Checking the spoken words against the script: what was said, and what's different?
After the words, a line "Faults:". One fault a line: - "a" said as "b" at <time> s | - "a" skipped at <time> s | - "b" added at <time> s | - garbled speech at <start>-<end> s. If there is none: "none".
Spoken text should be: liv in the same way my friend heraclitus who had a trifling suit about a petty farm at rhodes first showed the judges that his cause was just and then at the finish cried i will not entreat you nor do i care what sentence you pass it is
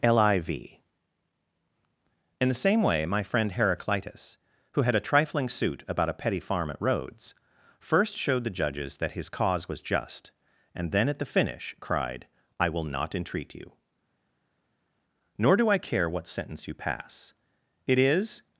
liv in the same way my friend heraclitus who had a trifling suit about a petty farm at rhodes first showed the judges that his cause was just and then at the finish cried i will not entreat you nor do i care what sentence you pass it is
Faults:
none